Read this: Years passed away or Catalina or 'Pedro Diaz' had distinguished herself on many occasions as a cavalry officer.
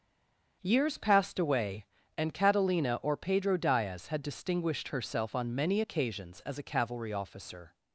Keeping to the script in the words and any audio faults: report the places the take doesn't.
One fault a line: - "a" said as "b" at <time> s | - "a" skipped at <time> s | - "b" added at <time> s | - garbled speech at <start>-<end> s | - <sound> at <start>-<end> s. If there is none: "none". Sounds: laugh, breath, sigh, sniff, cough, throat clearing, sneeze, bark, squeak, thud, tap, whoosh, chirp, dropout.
- "or" said as "and" at 2.2 s